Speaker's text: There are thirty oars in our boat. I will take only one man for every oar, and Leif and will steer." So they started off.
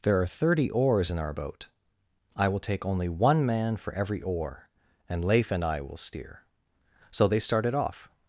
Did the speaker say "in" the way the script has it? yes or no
yes